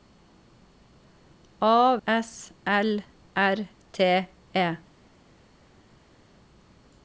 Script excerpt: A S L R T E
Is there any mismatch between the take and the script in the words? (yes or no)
no